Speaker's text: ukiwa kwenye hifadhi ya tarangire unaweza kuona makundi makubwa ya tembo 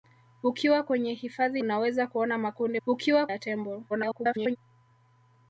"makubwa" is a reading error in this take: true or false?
true